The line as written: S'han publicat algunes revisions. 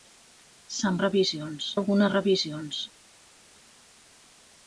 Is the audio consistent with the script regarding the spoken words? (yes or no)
no